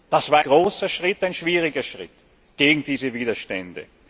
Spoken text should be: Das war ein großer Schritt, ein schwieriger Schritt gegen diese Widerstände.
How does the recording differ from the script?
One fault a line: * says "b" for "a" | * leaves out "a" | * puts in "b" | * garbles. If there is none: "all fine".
* leaves out "ein"